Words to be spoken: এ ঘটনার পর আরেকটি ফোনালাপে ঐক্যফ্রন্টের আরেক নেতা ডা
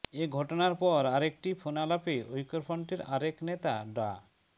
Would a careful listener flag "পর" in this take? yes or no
no